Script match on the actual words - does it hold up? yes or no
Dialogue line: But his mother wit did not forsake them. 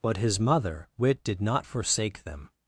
yes